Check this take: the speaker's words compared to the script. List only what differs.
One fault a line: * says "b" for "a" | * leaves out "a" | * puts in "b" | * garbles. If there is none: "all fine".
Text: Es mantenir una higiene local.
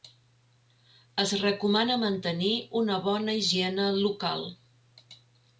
* puts in "recomana"
* puts in "bona"